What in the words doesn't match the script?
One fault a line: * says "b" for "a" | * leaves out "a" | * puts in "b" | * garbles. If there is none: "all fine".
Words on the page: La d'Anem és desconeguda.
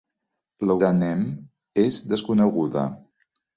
all fine